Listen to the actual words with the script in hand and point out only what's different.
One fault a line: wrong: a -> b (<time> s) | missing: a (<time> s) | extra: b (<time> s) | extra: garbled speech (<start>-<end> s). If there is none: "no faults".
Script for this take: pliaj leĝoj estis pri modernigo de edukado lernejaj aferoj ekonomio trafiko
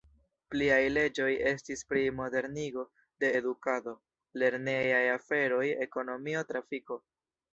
no faults